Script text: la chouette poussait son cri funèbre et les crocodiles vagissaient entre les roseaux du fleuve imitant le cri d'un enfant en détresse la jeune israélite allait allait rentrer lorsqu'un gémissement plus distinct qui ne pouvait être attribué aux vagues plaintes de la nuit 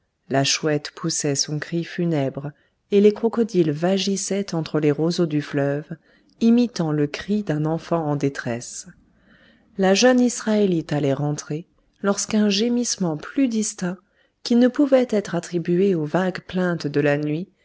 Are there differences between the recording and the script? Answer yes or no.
yes